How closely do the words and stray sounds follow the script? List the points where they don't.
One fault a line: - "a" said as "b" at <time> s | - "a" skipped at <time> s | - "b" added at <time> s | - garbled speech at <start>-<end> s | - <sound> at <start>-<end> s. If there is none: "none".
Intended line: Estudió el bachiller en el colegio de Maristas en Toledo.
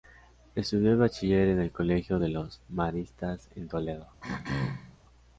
- "los" added at 2.3 s
- throat clearing at 4.2-5.0 s